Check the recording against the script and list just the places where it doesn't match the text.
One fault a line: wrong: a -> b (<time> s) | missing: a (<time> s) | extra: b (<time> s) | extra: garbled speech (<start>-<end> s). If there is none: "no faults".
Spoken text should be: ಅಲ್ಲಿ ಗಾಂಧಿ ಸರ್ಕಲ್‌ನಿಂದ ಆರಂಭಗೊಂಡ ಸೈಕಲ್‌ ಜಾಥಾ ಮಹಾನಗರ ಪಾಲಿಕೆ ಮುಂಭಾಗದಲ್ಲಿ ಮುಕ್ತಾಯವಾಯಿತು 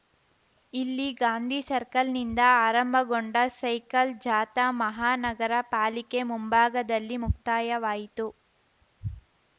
wrong: ಅಲ್ಲಿ -> ಇಲ್ಲಿ (0.7 s)